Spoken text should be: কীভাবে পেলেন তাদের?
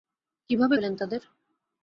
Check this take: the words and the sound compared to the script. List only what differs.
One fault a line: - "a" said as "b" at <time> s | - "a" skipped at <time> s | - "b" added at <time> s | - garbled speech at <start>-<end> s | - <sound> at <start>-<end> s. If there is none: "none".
none